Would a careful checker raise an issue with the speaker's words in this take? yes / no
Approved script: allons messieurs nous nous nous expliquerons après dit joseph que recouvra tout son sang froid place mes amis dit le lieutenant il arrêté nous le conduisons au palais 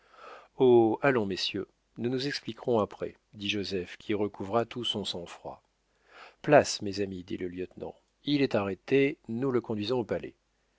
yes